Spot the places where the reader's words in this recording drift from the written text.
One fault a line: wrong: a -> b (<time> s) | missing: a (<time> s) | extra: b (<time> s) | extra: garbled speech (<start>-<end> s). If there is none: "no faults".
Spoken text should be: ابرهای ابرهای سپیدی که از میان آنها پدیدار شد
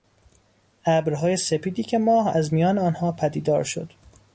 missing: ابرهای (1.4 s)
extra: ماه (2.0 s)